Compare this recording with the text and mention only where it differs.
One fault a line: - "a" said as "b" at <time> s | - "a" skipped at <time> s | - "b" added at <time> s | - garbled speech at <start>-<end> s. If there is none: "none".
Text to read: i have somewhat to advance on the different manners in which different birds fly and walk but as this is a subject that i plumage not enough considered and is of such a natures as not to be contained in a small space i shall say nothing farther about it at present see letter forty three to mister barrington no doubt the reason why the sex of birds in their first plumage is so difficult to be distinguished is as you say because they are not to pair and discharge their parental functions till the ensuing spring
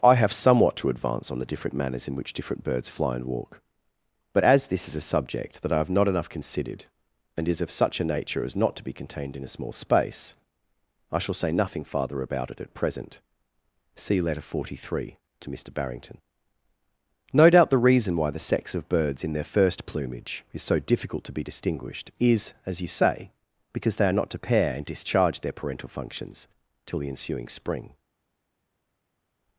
- "plumage" said as "have" at 5.8 s
- "natures" said as "nature" at 8.1 s